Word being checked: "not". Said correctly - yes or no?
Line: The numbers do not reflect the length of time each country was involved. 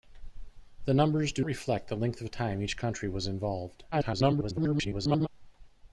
no